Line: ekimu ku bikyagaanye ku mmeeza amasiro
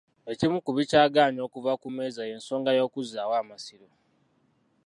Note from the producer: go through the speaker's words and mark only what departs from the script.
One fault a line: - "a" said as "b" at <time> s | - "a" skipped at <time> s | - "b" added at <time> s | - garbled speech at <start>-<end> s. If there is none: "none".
- "okuva" added at 1.5 s
- "y'ensonga y'okuzzaawo" added at 2.3 s